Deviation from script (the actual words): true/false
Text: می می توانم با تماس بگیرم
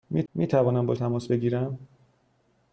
false